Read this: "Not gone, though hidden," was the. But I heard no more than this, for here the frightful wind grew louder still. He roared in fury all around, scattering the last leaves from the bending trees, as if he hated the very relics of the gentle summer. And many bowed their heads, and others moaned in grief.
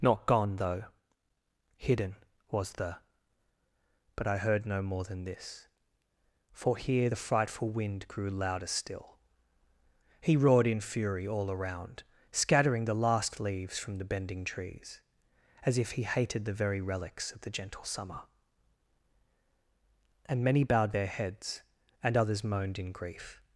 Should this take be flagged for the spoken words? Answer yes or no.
no